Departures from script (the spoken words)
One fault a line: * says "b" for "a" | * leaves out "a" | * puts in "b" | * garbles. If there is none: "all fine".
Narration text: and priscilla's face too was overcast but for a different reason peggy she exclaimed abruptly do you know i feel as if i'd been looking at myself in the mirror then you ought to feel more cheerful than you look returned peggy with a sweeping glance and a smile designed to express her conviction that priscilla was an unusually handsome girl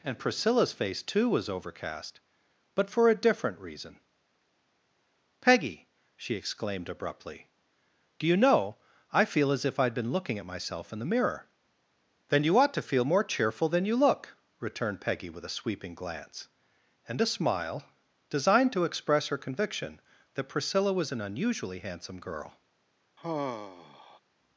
all fine